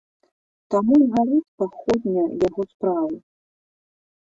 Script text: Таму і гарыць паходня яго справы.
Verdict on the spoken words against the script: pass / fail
pass